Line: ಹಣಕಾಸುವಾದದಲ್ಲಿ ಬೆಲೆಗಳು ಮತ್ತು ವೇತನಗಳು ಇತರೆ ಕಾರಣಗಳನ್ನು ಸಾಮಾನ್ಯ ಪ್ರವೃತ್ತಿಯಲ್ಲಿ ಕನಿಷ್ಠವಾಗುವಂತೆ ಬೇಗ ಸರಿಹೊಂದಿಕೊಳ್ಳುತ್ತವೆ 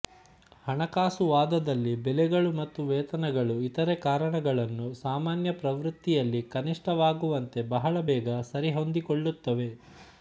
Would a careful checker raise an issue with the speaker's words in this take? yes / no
yes